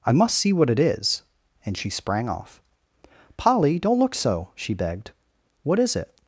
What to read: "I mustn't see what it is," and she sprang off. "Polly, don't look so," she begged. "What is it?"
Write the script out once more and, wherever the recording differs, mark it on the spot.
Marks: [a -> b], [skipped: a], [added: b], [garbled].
"I [mustn't -> must] see what it is," and she sprang off. "Polly, don't look so," she begged. "What is it?"